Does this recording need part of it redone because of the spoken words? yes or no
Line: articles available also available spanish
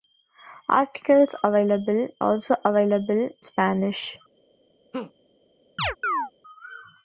no